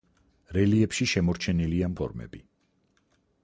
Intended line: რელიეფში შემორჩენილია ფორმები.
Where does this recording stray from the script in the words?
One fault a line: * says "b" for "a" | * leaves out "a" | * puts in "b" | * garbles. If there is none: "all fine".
all fine